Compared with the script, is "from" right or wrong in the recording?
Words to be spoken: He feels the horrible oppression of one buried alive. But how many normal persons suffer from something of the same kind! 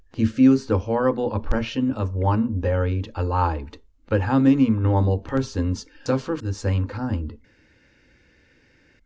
wrong